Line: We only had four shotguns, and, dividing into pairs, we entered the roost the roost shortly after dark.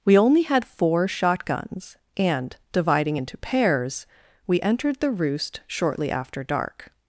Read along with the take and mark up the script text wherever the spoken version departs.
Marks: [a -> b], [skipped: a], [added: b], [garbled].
We only had four shotguns, and, dividing into pairs, we entered the roost [skipped: the roost] shortly after dark.